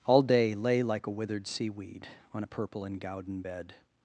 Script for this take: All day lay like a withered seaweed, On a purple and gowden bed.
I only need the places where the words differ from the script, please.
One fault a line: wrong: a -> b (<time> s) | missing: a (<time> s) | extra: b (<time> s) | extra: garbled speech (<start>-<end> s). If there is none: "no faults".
no faults